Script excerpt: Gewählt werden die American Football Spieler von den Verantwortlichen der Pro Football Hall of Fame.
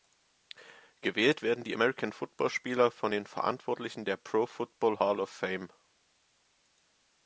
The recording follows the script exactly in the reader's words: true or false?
true